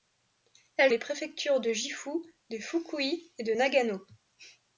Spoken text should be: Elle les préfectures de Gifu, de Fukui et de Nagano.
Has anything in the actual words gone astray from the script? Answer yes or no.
no